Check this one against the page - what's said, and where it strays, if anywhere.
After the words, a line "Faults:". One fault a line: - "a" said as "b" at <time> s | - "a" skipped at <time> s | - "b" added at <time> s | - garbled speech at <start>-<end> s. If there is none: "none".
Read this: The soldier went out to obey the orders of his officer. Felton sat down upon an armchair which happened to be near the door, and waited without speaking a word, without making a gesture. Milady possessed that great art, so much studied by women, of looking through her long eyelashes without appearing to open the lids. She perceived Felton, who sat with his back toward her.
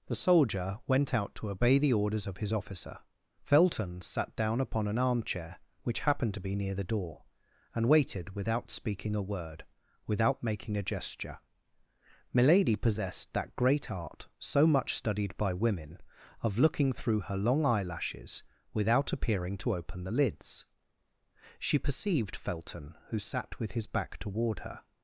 The soldier went out to obey the orders of his officer. Felton sat down upon an armchair which happened to be near the door, and waited without speaking a word, without making a gesture. Milady possessed that great art, so much studied by women, of looking through her long eyelashes without appearing to open the lids. She perceived Felton, who sat with his back toward her.
Faults:
none